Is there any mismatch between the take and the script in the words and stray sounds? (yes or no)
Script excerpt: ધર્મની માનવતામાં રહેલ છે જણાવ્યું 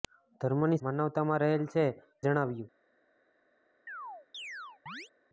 yes